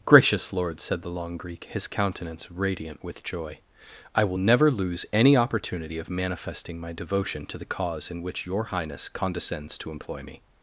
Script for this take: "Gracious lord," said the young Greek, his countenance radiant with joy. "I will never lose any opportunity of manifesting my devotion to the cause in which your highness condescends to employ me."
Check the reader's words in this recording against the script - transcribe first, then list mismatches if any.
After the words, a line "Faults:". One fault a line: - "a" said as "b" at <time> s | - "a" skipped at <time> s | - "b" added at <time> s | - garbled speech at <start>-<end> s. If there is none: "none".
"Gracious lord," said the long Greek, his countenance radiant with joy. "I will never lose any opportunity of manifesting my devotion to the cause in which your highness condescends to employ me."
Faults:
- "young" said as "long" at 1.1 s